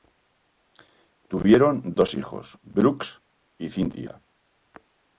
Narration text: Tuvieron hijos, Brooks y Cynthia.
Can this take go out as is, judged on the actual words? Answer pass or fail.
fail